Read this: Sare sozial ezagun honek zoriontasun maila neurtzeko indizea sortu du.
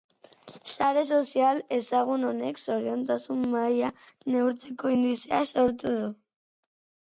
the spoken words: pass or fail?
pass